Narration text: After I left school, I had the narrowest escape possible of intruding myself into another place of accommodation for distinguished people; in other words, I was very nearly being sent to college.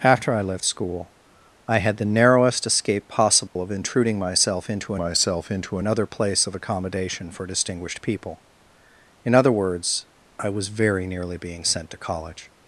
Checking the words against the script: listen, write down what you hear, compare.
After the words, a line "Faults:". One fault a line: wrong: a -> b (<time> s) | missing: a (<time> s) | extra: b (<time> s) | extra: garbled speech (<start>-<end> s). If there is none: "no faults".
After I left school, I had the narrowest escape possible of intruding myself into myself into another place of accommodation for distinguished people; in other words, I was very nearly being sent to college.
Faults:
extra: myself into (4.9 s)